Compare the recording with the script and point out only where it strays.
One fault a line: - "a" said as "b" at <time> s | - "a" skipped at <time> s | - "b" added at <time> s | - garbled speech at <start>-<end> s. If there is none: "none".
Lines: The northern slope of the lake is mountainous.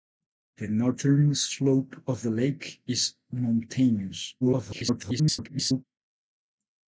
- garbled speech at 4.4-5.8 s